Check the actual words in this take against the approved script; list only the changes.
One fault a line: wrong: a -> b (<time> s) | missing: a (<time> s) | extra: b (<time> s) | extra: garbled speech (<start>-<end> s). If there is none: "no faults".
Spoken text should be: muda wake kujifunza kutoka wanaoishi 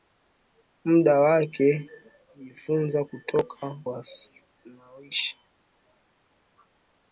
no faults